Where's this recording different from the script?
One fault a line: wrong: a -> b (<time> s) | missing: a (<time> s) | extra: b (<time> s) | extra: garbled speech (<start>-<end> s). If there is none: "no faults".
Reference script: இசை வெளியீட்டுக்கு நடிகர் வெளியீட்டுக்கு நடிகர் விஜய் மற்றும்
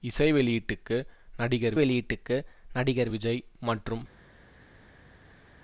no faults